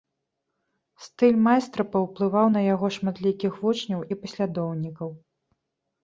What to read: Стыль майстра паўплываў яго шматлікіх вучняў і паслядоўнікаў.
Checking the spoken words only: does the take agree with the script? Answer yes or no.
no